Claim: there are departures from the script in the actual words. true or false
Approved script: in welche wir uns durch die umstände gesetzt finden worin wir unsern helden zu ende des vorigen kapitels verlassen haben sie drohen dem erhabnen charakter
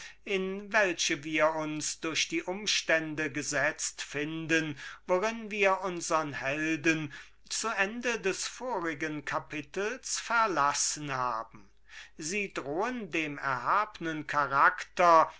false